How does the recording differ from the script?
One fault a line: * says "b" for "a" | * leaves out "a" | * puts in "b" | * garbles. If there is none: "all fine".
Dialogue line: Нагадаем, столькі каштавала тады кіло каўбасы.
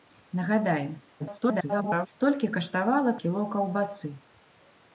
* garbles
* leaves out "тады"